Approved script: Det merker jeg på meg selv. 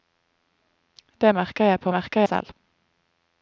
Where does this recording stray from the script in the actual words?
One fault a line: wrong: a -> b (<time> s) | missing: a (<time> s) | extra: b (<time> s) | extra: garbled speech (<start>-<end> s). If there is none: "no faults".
wrong: meg -> merker (1.9 s)